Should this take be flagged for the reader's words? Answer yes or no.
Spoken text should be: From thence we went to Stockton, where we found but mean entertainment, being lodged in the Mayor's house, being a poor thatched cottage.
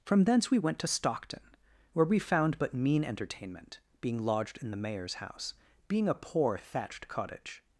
no